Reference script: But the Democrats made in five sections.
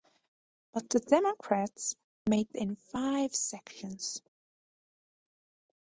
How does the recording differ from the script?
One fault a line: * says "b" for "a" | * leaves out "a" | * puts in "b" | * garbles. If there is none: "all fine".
all fine